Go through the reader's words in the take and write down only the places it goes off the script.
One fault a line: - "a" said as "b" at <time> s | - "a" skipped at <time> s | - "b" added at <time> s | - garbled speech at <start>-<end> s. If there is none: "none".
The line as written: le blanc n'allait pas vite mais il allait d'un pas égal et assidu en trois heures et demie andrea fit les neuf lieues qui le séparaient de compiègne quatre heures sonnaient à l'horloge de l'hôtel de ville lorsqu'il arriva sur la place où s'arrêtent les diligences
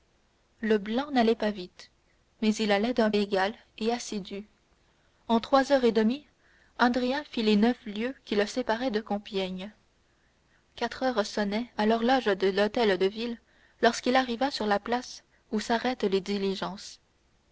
- "pas" skipped at 3.1 s